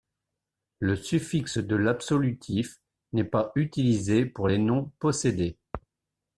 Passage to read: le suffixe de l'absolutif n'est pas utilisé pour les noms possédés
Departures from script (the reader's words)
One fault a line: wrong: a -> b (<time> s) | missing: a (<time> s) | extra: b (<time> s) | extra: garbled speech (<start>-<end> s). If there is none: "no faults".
no faults